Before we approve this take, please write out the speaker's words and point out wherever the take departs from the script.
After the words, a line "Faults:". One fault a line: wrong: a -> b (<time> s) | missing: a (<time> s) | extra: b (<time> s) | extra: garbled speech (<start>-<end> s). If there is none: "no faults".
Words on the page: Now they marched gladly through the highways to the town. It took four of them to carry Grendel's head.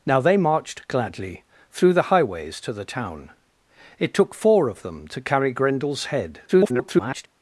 Now they marched gladly through the highways to the town. It took four of them to carry Grendel's head. [garbled]
Faults:
extra: garbled speech (6.5-7.3 s)